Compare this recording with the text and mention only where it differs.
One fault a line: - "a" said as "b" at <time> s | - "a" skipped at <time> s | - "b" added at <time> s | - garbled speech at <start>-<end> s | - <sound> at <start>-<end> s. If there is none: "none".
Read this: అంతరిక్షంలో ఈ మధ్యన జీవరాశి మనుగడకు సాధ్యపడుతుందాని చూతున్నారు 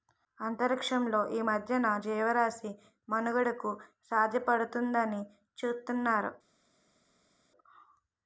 none